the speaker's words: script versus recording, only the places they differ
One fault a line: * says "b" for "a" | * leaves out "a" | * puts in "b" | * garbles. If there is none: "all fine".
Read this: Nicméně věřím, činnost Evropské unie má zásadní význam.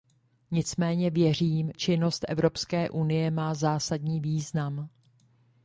all fine